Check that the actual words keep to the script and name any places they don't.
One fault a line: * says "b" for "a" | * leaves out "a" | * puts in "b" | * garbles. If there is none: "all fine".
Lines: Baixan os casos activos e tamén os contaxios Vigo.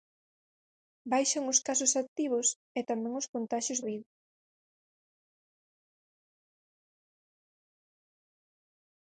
all fine